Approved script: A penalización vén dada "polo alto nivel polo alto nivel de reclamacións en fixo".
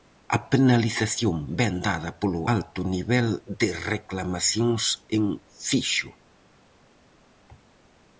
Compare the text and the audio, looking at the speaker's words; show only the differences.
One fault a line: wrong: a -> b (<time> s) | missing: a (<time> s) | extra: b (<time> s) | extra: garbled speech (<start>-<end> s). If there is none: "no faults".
missing: polo alto nivel (3.3 s)